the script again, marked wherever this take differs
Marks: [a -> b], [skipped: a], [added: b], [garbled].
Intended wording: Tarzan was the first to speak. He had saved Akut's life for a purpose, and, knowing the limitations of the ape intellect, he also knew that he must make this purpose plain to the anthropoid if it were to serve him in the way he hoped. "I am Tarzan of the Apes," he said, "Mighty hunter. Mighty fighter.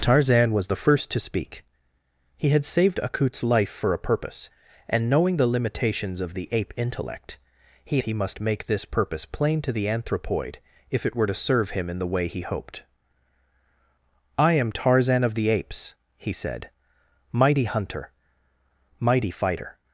Tarzan was the first to speak. He had saved Akut's life for a purpose, and, knowing the limitations of the ape intellect, he [skipped: also knew that] he must make this purpose plain to the anthropoid if it were to serve him in the way he hoped. "I am Tarzan of the Apes," he said, "Mighty hunter. Mighty fighter.